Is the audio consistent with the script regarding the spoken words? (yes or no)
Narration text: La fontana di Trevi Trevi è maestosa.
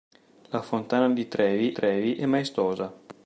yes